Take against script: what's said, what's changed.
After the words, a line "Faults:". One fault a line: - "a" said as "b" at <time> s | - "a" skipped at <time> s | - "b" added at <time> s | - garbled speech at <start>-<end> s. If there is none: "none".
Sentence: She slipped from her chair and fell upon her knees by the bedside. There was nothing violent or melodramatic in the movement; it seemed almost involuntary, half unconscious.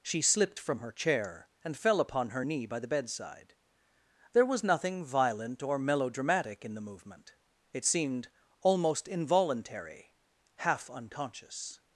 She slipped from her chair and fell upon her knee by the bedside. There was nothing violent or melodramatic in the movement; it seemed almost involuntary, half unconscious.
Faults:
- "knees" said as "knee" at 2.4 s